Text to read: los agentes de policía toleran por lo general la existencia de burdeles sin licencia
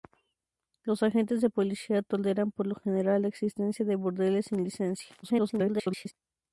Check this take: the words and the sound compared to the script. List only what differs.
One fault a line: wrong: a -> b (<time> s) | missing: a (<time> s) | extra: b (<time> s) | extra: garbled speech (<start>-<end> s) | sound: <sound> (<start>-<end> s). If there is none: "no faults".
extra: garbled speech (5.2-6.1 s)